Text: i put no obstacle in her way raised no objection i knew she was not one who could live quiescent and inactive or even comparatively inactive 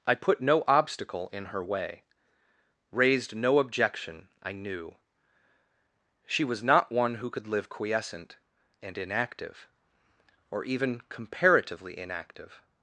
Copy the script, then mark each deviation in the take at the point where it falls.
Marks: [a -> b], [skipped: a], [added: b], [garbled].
i put no obstacle in her way raised no objection i knew she was not one who could live quiescent and inactive or even comparatively inactive